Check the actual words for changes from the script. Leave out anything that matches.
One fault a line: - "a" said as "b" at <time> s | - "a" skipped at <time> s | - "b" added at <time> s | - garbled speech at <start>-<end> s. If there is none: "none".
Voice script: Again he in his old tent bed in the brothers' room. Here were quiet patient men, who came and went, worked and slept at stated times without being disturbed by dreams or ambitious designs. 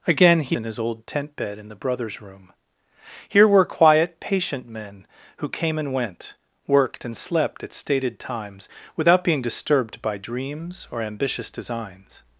none